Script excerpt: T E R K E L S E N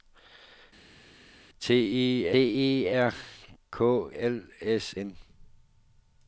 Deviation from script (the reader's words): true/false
true